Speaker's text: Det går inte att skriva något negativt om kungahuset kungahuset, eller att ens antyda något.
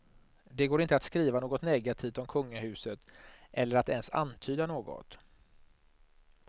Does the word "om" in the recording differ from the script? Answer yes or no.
no